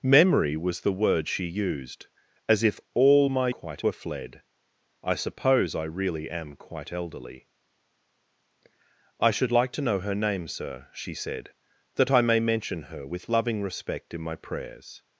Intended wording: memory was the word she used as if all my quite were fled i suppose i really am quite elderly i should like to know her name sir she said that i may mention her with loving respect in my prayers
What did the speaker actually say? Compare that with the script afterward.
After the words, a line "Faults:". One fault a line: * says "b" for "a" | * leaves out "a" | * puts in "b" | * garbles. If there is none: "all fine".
memory was the word she used as if all my quite were fled i suppose i really am quite elderly i should like to know her name sir she said that i may mention her with loving respect in my prayers
Faults:
all fine